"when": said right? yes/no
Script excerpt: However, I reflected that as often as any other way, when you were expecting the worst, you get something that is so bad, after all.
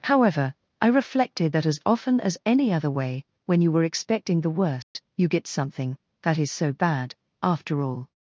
yes